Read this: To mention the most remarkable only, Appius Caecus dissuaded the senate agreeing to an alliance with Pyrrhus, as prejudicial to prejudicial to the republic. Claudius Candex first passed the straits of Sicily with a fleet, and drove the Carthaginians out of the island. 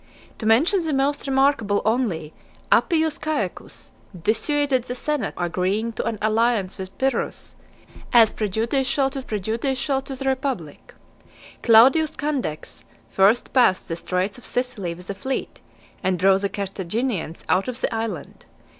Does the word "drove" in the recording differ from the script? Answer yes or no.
no